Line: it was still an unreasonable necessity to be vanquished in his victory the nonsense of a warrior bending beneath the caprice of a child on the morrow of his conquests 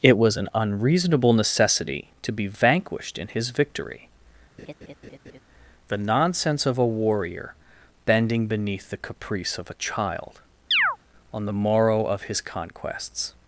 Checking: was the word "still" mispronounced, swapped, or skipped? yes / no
yes